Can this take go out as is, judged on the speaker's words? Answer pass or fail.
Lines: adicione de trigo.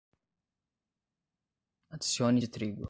pass